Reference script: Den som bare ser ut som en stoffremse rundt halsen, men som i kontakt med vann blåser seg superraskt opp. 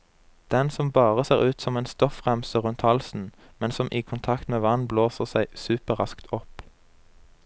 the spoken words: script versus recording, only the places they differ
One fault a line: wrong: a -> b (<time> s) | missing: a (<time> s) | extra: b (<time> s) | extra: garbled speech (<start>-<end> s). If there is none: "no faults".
no faults